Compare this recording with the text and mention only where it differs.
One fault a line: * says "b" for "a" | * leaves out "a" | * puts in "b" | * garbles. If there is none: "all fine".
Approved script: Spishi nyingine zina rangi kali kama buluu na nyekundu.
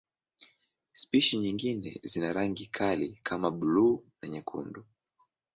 all fine